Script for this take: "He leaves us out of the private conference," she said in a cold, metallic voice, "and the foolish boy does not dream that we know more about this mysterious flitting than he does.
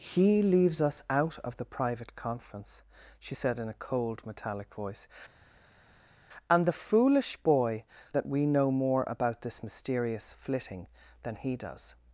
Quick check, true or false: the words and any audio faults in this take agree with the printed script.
false